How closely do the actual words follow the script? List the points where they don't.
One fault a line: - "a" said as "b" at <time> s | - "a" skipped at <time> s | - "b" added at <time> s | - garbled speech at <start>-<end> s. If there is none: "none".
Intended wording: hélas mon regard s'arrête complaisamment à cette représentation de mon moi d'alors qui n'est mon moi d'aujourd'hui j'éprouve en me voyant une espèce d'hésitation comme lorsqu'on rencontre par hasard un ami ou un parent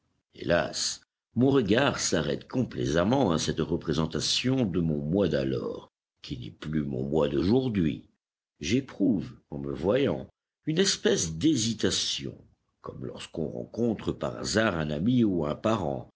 - "plus" added at 6.5 s